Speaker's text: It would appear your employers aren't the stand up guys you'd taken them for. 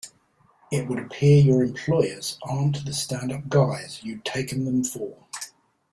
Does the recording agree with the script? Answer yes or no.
yes